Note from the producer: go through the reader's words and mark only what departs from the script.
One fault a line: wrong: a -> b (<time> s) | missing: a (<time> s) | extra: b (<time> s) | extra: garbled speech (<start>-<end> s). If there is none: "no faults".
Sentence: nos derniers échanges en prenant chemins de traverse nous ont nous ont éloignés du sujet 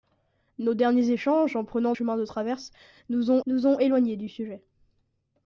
no faults